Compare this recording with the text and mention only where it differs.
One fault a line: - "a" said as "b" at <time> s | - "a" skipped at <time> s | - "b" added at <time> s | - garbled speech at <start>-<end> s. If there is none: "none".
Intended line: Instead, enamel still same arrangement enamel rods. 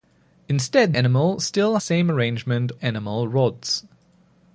none